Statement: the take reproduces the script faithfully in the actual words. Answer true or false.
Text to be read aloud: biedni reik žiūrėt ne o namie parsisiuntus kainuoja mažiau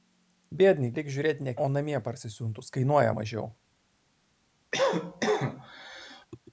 true